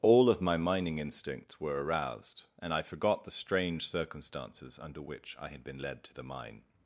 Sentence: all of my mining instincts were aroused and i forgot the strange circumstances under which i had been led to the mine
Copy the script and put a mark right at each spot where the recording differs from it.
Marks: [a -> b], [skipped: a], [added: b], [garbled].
all of my mining instincts were aroused and i forgot the strange circumstances under which i had been led to the mine